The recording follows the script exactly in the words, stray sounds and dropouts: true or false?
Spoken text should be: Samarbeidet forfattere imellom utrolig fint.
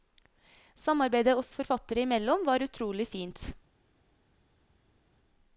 false